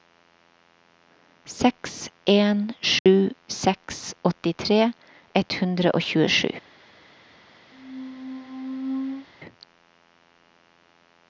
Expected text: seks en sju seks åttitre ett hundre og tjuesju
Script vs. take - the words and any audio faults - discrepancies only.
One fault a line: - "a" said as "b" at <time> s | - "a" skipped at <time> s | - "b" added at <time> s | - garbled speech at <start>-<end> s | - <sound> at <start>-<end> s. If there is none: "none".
- dropout at 3.0-3.1 s
- squeak at 7.7-9.3 s